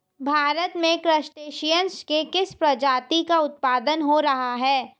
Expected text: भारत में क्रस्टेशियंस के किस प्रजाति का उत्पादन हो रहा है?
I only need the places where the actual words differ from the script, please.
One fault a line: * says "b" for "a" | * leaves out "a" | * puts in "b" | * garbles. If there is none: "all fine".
all fine